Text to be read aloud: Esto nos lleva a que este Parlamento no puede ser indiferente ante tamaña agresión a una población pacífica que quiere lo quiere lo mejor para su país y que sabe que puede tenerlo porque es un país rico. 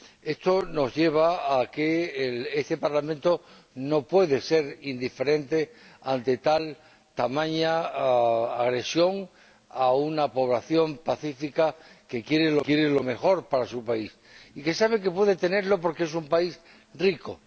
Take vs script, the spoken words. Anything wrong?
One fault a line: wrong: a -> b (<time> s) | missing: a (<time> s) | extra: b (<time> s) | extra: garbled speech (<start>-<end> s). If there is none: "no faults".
no faults